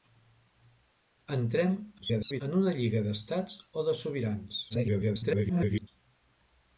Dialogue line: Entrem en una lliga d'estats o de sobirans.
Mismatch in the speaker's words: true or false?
true